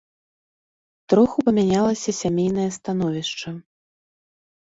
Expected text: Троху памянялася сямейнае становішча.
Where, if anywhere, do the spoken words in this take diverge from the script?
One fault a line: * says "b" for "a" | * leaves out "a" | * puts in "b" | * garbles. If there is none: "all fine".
all fine